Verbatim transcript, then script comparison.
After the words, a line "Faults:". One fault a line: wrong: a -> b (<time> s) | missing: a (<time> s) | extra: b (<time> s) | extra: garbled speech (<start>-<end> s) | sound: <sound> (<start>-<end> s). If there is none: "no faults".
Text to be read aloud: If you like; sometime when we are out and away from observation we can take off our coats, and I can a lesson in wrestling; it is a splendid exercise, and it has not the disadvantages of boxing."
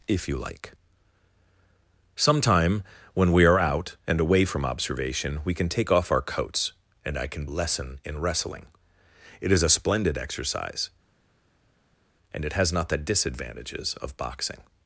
If you like; sometime when we are out and away from observation we can take off our coats, and I can a lesson in wrestling; it is a splendid exercise, and it has not the disadvantages of boxing."
Faults:
no faults